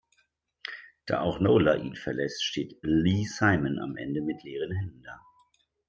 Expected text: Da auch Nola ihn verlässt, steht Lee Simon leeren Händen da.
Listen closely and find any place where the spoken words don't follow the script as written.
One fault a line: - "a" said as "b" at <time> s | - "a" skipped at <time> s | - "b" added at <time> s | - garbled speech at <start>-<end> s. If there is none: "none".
- "am Ende mit" added at 3.8 s